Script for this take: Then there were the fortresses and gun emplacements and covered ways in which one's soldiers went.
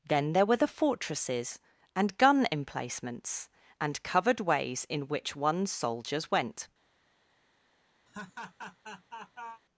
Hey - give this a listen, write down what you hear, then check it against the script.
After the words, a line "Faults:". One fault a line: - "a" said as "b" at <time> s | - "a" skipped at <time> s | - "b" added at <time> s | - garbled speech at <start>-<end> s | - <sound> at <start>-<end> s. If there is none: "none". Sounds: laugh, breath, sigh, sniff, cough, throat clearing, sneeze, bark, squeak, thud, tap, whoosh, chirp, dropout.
Then there were the fortresses and gun emplacements and covered ways in which one's soldiers went.
Faults:
- laugh at 8.1-9.6 s